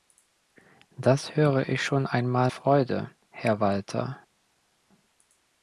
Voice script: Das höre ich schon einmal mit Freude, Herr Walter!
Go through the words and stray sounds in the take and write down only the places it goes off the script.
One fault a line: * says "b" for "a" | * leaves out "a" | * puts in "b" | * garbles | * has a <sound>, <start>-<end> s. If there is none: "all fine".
* leaves out "mit"